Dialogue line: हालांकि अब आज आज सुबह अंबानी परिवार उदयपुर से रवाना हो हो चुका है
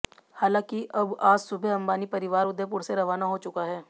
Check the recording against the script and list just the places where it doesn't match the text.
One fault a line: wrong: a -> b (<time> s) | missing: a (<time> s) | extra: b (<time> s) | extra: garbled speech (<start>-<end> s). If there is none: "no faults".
missing: आज (1.4 s)
missing: हो (3.4 s)